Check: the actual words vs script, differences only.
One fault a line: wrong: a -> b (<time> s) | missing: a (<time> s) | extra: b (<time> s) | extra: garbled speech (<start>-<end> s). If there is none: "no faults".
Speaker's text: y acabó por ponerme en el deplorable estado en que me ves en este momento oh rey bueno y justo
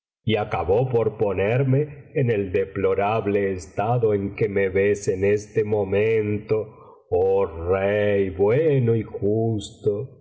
no faults